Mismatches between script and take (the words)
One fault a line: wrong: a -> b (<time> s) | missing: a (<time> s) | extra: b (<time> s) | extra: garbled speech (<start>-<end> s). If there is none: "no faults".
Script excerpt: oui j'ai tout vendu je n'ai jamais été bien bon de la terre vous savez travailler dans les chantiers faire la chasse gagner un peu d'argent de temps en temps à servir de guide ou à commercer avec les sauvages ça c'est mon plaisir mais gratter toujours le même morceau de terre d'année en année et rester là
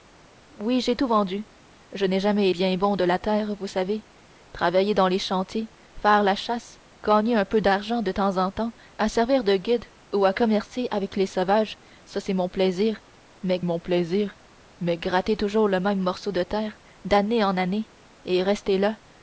missing: été (2.5 s)
extra: mon plaisir mais (13.6 s)